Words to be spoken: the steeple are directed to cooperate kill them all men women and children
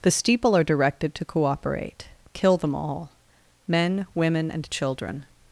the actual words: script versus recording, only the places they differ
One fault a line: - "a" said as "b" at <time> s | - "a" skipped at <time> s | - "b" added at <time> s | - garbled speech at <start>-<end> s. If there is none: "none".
none